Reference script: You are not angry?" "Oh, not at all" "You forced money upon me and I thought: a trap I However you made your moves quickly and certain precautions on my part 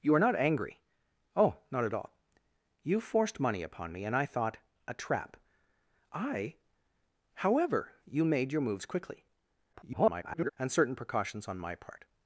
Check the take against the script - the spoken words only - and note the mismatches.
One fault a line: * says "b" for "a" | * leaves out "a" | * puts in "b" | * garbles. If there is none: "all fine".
* garbles